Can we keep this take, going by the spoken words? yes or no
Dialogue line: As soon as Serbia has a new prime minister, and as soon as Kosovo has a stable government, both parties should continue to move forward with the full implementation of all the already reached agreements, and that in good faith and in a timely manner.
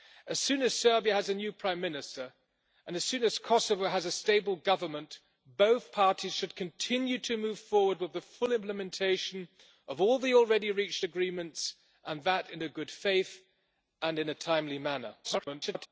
no